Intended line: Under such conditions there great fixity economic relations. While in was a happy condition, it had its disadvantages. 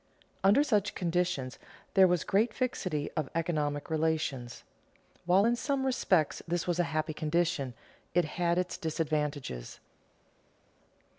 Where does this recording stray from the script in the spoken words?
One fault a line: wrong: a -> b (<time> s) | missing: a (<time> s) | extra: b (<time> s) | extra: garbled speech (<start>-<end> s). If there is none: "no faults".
extra: was (2.1 s)
extra: of (3.2 s)
extra: some respects this (5.6 s)